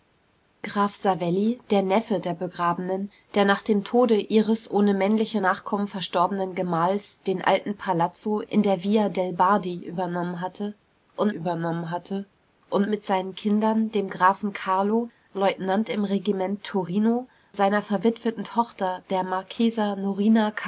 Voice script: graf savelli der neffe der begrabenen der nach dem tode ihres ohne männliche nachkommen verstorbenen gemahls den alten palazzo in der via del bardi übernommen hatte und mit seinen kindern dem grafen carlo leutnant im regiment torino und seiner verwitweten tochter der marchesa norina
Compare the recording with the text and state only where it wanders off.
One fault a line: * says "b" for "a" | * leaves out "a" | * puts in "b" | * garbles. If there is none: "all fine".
* puts in "übernommen hatte und"
* leaves out "und"